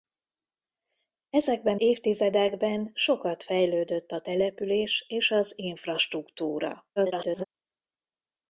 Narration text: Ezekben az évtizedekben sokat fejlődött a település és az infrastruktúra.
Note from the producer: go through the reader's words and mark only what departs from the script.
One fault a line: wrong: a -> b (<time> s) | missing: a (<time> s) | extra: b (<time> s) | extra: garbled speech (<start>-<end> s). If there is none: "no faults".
missing: az (1.8 s)
extra: garbled speech (7.0-7.4 s)